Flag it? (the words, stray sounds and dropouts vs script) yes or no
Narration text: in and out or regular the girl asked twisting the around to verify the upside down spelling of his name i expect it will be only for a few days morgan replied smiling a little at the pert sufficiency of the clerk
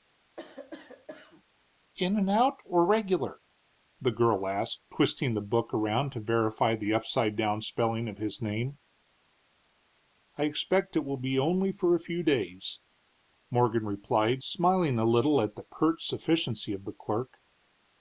yes